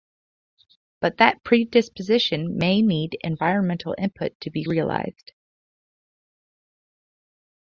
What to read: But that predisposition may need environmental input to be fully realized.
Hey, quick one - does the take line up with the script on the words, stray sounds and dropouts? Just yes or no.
no